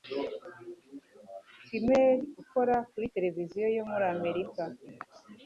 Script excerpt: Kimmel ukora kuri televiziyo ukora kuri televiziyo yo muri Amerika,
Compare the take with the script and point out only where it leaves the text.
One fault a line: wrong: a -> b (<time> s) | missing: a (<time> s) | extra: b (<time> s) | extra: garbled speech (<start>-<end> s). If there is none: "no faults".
missing: ukora kuri televiziyo (3.7 s)